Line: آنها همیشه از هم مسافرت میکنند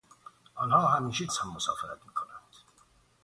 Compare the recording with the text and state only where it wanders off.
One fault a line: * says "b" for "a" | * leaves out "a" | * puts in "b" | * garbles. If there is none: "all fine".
all fine